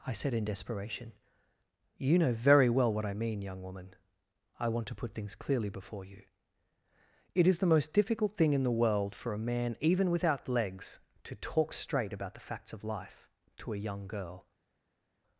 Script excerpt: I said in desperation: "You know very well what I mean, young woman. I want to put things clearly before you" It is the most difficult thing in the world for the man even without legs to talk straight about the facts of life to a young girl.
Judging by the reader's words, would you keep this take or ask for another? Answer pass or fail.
fail